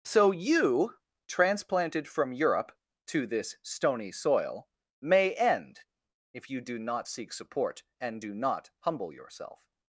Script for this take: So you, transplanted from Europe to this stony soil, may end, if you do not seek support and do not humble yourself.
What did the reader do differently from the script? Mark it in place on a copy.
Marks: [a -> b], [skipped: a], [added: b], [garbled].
So you, transplanted from Europe to this stony soil, may end, if you do not seek support and do not humble yourself.